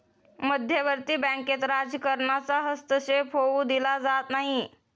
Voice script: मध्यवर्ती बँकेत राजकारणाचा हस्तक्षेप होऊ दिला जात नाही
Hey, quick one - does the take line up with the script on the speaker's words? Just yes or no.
yes